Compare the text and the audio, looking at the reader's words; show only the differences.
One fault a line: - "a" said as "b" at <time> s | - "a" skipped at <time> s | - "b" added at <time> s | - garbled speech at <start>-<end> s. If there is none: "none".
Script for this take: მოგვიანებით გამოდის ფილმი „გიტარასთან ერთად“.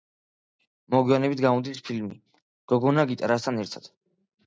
- "გოგონა" added at 2.8 s